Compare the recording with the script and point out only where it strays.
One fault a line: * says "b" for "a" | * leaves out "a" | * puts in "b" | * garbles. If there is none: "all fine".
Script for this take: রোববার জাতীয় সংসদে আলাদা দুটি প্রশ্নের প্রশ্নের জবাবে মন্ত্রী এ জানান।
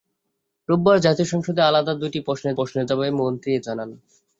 all fine